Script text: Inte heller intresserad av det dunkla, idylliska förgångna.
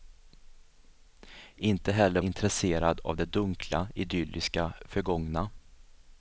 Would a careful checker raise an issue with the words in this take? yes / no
no